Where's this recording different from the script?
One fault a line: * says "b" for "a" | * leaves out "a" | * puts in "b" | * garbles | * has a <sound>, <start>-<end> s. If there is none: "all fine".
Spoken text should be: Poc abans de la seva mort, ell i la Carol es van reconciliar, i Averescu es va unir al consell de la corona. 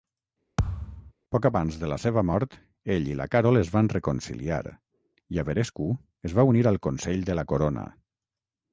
* has a thud, 0.6-1.1 s